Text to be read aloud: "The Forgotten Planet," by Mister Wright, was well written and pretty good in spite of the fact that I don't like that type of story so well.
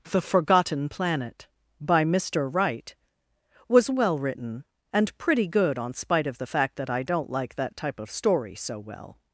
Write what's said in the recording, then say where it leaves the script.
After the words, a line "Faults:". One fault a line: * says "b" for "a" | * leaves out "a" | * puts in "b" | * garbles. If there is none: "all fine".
"The Forgotten Planet," by Mister Wright, was well written and pretty good on spite of the fact that I don't like that type of story so well.
Faults:
* says "on" for "in"